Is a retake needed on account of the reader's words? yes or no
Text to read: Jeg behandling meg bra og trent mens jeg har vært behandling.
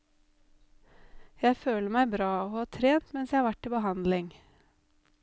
yes